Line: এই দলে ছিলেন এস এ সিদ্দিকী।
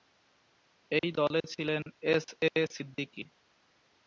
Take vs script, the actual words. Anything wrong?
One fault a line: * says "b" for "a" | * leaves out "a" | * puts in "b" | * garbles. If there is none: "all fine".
all fine